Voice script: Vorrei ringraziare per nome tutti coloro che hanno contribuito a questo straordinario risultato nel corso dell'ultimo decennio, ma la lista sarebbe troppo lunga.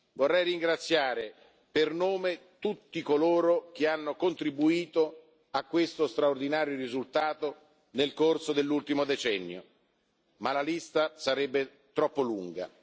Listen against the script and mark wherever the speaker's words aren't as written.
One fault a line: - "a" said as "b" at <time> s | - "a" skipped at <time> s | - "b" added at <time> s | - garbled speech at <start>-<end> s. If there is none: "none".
none